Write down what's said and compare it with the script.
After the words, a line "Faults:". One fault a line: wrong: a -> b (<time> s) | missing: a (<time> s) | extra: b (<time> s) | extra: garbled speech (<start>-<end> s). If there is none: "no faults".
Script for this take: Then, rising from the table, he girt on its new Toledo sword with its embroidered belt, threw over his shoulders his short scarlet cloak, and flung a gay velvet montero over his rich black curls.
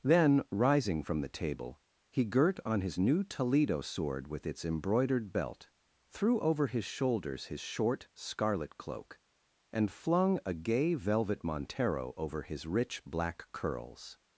Then, rising from the table, he girt on his new Toledo sword with its embroidered belt, threw over his shoulders his short scarlet cloak, and flung a gay velvet montero over his rich black curls.
Faults:
wrong: its -> his (2.8 s)